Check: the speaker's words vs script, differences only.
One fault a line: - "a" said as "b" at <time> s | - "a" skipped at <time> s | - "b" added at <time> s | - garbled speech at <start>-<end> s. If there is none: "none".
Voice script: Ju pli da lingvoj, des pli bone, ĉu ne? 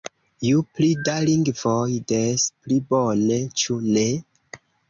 none